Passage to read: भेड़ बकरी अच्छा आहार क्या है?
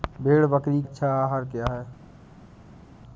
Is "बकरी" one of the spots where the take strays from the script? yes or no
no